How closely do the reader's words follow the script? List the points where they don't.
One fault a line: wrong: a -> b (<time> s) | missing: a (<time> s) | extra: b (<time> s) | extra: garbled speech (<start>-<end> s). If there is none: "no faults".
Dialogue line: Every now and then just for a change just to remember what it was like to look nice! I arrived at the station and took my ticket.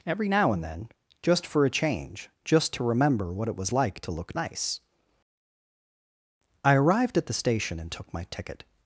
no faults